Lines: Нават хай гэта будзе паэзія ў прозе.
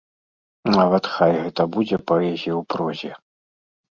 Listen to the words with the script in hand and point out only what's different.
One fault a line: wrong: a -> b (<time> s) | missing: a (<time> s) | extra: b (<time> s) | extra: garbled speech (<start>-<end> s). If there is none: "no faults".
no faults